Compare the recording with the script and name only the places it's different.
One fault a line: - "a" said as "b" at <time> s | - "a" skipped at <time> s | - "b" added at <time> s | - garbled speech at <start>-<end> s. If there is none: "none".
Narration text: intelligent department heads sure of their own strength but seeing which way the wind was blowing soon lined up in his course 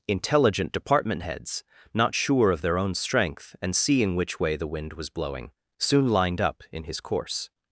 - "not" added at 1.9 s
- "but" said as "and" at 3.6 s